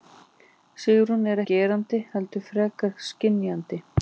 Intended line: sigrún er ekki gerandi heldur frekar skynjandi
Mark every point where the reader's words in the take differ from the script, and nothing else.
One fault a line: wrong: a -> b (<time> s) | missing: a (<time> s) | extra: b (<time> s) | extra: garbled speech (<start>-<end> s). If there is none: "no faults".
missing: ekki (1.4 s)